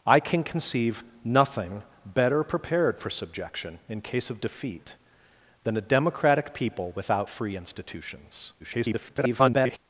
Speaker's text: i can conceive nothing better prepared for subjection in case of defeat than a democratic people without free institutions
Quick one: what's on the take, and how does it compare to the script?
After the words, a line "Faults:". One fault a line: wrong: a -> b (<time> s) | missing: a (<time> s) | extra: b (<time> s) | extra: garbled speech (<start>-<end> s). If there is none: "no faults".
i can conceive nothing better prepared for subjection in case of defeat than a democratic people without free institutions [garbled]
Faults:
extra: garbled speech (8.6-9.8 s)